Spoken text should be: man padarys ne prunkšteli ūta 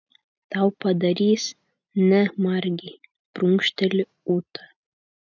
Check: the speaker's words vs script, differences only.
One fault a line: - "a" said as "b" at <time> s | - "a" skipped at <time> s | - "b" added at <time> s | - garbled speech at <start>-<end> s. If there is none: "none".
- "man" said as "tau" at 0.5 s
- "margei" added at 2.5 s